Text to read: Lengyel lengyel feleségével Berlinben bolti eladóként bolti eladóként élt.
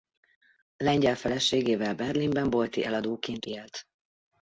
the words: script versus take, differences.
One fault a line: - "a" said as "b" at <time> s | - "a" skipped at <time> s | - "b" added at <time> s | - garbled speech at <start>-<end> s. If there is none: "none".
- "lengyel" skipped at 1.1 s
- "bolti eladóként" skipped at 3.4 s